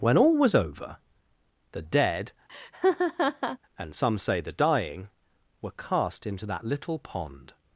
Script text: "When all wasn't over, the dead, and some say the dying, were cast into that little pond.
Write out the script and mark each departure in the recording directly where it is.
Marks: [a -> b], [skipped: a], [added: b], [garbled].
"When all [wasn't -> was] over, the dead, and some say the dying, were cast into that little pond.